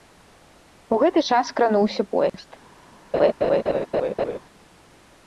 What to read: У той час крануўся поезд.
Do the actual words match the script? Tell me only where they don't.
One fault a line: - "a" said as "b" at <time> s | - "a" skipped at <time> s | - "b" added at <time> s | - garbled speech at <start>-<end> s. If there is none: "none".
- "той" said as "гэты" at 1.0 s